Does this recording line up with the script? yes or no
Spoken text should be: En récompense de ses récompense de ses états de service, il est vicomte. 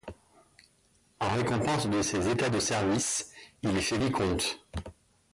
no